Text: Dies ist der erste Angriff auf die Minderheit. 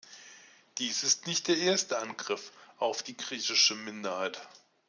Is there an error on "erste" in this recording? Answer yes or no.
no